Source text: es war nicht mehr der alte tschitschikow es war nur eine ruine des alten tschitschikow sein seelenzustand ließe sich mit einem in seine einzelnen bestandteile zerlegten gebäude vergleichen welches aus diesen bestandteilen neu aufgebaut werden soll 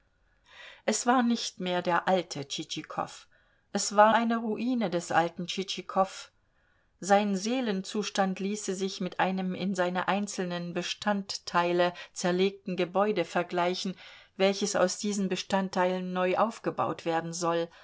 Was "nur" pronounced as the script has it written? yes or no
no